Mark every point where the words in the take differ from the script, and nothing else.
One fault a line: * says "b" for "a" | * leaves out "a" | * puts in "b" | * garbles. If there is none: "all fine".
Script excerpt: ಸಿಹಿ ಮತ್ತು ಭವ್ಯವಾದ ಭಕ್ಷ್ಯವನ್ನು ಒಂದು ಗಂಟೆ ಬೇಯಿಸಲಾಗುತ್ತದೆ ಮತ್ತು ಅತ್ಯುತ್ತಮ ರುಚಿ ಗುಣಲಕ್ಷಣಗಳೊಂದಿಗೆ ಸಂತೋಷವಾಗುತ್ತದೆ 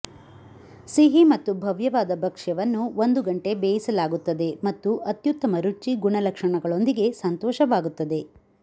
all fine